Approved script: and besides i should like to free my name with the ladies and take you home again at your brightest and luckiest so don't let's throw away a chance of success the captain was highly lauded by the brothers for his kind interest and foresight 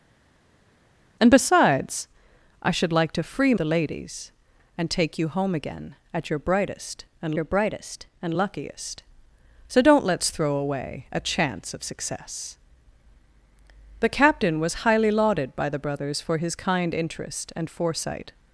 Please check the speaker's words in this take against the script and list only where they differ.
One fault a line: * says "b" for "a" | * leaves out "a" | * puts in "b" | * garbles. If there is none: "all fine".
* leaves out "my name with"
* puts in "your brightest and"